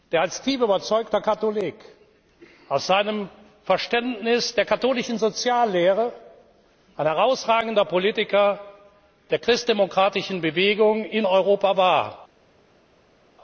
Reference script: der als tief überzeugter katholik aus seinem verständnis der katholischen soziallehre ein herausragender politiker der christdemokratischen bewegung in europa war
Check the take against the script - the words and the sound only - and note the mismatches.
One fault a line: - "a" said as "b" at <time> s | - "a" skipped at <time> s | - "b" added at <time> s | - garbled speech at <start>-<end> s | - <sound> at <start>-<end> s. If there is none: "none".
none